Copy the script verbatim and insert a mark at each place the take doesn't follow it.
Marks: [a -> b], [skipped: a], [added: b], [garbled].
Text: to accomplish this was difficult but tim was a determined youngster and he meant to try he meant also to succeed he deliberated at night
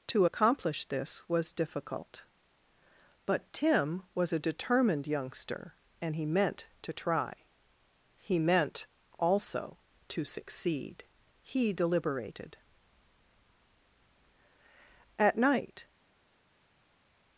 to accomplish this was difficult but tim was a determined youngster and he meant to try he meant also to succeed he deliberated at night